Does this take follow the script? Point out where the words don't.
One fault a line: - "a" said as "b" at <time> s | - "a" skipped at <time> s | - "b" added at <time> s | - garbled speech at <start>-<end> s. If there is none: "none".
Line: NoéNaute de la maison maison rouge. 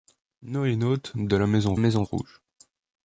none